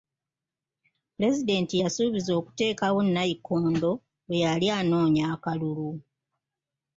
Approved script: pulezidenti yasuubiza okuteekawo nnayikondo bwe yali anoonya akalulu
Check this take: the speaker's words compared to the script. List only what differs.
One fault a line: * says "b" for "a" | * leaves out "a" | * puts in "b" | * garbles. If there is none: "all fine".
all fine